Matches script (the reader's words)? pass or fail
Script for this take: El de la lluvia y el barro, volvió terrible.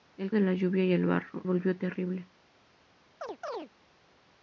pass